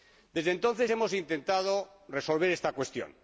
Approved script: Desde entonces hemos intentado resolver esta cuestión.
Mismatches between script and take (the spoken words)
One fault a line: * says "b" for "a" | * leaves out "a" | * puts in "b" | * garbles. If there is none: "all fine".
all fine